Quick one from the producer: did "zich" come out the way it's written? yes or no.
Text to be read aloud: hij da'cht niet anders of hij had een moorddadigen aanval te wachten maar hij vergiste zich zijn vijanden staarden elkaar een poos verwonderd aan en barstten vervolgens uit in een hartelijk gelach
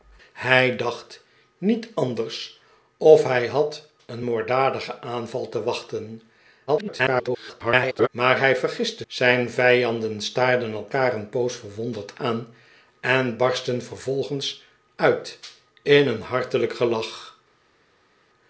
no